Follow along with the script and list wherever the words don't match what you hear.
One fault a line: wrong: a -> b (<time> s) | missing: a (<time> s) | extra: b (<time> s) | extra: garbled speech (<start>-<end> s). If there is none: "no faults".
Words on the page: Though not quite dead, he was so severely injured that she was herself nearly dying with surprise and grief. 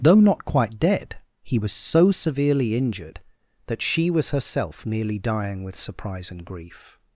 no faults